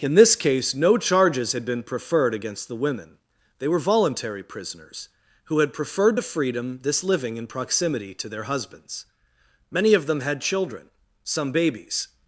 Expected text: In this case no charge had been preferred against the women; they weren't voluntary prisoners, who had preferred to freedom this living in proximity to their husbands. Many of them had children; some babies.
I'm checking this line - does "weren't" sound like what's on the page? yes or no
no